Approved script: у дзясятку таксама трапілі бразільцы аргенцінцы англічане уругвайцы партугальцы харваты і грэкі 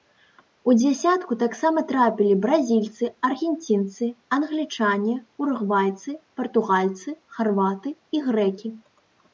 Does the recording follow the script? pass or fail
pass